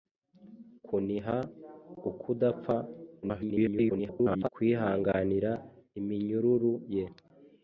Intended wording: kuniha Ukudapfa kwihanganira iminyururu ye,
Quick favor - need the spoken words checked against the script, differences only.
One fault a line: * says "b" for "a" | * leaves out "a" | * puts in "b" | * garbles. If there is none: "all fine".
* garbles